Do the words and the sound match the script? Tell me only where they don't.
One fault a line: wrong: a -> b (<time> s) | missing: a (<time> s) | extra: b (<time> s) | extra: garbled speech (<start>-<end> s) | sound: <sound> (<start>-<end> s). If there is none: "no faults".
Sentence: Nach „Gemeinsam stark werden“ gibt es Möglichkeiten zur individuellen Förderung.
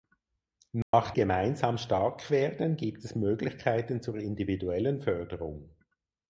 sound: dropout (0.8-0.9 s)